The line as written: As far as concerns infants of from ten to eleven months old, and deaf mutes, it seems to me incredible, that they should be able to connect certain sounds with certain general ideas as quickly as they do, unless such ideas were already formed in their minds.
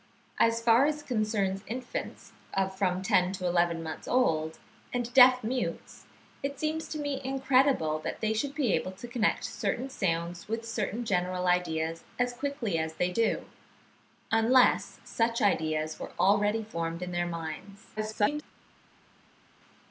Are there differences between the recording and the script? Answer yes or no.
yes